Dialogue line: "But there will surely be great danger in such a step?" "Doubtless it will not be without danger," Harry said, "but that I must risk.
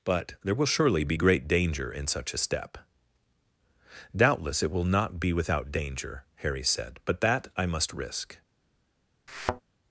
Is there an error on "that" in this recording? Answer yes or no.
no